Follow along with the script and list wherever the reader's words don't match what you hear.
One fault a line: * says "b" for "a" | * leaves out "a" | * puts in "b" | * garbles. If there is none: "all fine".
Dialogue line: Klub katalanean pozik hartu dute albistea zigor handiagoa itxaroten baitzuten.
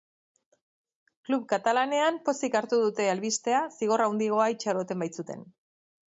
all fine